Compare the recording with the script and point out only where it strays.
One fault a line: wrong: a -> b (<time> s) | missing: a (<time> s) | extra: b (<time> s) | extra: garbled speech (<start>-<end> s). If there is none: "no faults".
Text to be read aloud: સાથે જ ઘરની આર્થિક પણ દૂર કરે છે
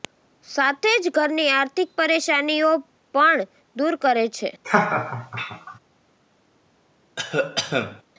extra: પરેશાનીઓ (1.9 s)